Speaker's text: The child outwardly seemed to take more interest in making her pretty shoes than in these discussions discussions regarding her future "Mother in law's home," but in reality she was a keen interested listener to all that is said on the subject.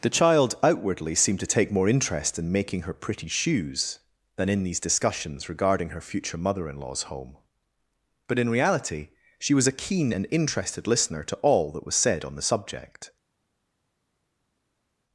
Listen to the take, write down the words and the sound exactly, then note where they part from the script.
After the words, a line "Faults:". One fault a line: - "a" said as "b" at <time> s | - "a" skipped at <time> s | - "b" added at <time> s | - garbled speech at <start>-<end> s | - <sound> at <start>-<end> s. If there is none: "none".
The child outwardly seemed to take more interest in making her pretty shoes than in these discussions regarding her future "Mother in law's home," but in reality she was a keen and interested listener to all that was said on the subject.
Faults:
- "discussions" skipped at 5.5 s
- "and" added at 10.1 s
- "is" said as "was" at 11.8 s